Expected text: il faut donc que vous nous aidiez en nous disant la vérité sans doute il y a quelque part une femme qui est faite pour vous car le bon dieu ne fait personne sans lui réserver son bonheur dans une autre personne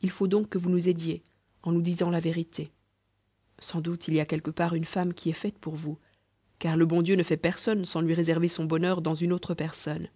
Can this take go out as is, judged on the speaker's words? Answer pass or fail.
pass